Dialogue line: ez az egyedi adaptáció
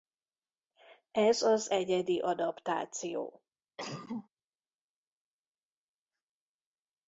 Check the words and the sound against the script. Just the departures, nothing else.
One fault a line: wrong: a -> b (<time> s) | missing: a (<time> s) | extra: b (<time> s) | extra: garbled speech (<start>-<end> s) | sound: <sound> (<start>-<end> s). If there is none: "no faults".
sound: cough (3.8-4.3 s)